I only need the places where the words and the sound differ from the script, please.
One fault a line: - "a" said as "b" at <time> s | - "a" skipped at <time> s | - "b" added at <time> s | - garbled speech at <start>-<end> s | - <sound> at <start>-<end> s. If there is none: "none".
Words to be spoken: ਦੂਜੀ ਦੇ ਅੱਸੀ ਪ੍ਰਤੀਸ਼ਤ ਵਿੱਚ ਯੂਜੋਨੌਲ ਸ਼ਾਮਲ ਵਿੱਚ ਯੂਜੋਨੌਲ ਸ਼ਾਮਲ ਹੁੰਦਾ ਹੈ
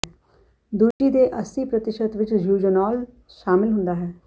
- dropout at 0.9-1.0 s
- "ਵਿੱਚ ਯੂਜੋਨੌਲ ਸ਼ਾਮਲ" skipped at 3.7 s